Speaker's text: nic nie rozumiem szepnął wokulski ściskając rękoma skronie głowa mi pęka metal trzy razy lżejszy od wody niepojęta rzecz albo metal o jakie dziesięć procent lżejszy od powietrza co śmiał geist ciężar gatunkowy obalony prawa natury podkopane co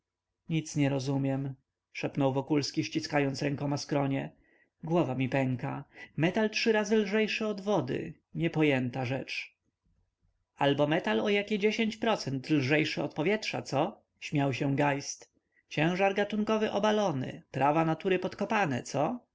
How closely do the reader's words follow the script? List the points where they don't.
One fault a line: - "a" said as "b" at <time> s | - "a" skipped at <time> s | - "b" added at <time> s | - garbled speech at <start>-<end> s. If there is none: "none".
- "się" added at 14.5 s